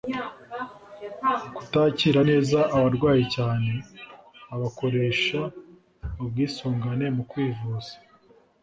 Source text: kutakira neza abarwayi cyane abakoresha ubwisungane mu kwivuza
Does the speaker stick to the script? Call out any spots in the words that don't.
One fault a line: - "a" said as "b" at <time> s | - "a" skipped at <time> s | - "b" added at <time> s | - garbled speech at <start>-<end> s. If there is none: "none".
none